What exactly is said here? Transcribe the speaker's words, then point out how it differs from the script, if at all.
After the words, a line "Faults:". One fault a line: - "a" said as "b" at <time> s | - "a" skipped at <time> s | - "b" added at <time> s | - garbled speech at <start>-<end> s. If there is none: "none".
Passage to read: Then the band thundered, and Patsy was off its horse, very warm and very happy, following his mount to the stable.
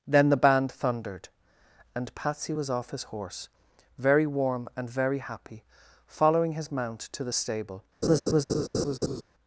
Then the band thundered, and Patsy was off his horse, very warm and very happy, following his mount to the stable.
Faults:
- "its" said as "his" at 2.9 s